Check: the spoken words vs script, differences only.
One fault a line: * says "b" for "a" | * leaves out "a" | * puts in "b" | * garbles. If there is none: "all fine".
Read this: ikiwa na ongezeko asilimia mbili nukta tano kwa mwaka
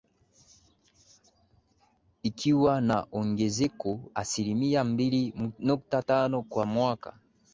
all fine